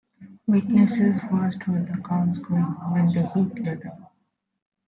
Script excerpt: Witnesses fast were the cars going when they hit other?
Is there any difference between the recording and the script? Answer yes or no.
no